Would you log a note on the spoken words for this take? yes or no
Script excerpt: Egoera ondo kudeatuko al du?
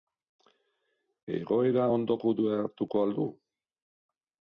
no